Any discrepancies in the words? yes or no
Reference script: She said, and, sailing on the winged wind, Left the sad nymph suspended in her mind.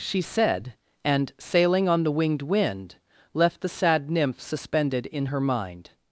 no